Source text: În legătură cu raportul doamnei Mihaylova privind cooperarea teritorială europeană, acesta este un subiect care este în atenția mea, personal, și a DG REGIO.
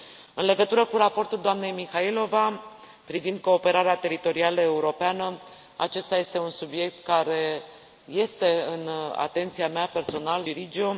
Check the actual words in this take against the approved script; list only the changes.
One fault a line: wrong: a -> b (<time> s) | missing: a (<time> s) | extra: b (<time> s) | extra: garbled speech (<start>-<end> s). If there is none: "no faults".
missing: și a DG (10.4 s)